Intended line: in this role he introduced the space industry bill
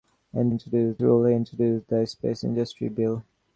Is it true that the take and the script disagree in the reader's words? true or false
true